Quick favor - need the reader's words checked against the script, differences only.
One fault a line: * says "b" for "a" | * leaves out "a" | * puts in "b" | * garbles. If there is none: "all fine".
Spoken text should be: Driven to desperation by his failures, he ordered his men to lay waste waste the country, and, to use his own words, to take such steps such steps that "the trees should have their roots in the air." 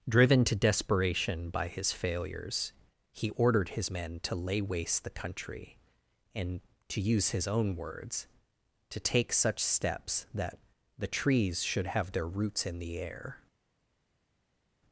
* leaves out "waste"
* leaves out "such steps"